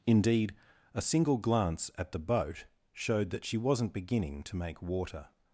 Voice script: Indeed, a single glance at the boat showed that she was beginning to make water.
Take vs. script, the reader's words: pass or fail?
fail